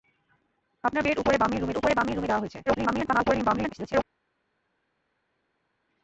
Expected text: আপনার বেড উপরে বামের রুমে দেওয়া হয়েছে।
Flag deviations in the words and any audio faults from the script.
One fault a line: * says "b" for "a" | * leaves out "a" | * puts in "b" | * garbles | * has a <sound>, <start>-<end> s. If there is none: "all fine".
* puts in "উপরে বামের রুমে"
* garbles